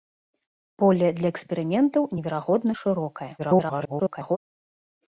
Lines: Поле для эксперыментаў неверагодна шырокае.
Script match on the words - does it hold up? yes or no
no